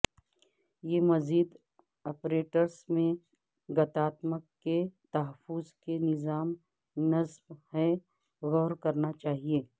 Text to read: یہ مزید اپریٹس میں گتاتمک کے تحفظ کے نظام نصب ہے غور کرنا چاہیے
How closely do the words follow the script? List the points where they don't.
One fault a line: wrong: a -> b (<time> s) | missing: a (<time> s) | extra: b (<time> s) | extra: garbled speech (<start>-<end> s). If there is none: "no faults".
no faults